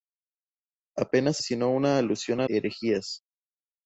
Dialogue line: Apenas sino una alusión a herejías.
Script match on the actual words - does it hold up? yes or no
yes